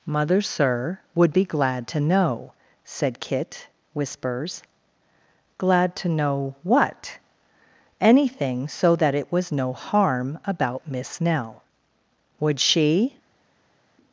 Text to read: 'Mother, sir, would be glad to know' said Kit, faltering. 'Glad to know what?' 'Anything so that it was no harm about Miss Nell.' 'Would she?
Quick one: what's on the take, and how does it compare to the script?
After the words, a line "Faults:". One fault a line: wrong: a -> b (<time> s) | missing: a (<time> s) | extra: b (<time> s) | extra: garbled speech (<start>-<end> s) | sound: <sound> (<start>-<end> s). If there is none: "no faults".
'Mother, sir, would be glad to know' said Kit, whispers. 'Glad to know what?' 'Anything so that it was no harm about Miss Nell.' 'Would she?
Faults:
wrong: faltering -> whispers (3.9 s)